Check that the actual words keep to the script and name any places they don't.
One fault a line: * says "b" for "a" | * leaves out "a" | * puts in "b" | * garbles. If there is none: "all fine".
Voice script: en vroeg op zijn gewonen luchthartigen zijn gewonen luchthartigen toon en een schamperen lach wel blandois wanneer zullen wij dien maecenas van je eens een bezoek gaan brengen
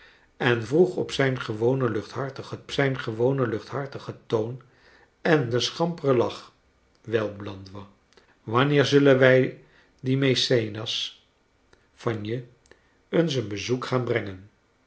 all fine